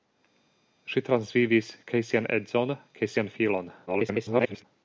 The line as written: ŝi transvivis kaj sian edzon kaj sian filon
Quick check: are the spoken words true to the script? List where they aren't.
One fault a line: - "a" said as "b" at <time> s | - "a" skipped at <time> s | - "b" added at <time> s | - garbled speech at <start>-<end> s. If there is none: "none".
- garbled speech at 3.9-4.6 s